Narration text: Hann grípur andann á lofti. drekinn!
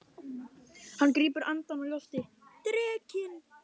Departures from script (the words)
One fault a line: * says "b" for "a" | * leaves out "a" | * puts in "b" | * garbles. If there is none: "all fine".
all fine